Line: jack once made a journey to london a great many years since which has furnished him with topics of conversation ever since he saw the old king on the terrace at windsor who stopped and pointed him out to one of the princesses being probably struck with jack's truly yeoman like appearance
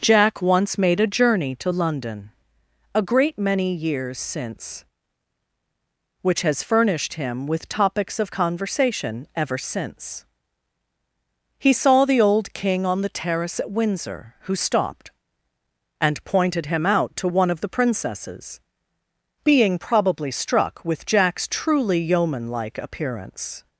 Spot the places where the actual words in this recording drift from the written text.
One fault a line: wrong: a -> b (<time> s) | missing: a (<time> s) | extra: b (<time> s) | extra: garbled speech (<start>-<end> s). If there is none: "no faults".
no faults